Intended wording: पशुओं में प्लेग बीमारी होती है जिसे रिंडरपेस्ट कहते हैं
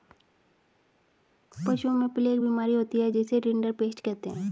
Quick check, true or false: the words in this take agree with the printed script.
true